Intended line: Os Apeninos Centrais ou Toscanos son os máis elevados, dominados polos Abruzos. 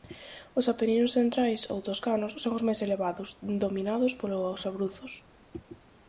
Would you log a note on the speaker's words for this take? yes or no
no